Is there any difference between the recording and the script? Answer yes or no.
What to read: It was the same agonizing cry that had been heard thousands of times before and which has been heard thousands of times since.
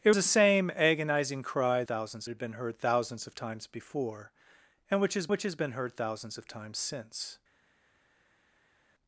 yes